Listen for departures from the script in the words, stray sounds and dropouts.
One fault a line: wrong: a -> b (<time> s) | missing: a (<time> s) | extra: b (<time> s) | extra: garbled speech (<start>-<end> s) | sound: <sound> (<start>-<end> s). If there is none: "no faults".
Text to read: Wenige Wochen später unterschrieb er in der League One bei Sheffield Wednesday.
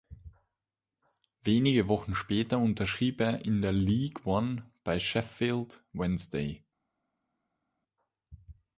no faults